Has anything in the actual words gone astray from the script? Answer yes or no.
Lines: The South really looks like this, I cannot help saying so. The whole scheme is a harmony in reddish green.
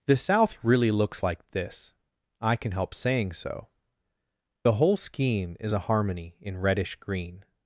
yes